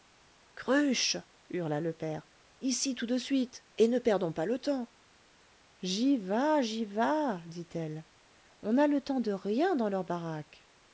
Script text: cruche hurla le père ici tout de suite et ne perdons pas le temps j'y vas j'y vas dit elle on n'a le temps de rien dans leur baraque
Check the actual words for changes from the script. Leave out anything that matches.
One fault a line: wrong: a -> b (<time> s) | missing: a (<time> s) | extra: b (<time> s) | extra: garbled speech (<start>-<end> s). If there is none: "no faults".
no faults